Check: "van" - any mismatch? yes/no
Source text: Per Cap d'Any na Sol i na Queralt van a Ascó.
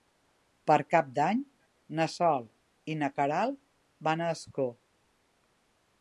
no